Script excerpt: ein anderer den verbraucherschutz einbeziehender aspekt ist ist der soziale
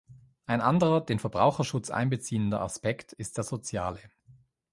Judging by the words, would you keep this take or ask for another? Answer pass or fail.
fail